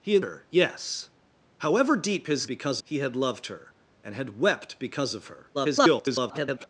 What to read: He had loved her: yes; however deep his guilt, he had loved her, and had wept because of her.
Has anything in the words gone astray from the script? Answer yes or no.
yes